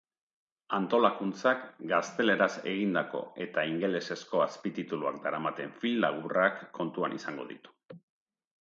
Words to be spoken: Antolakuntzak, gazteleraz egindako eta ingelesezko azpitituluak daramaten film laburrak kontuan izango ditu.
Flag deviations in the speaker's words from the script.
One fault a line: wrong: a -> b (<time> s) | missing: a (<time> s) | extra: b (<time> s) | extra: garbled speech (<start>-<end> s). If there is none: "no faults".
no faults